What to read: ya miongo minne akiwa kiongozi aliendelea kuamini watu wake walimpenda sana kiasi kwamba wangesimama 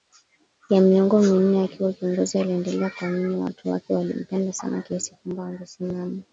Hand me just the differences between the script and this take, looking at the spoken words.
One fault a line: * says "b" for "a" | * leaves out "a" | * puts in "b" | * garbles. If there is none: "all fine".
all fine